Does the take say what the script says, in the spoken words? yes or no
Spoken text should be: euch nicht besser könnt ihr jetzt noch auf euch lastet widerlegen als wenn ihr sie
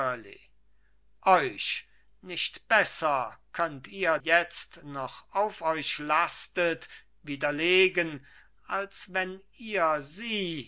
yes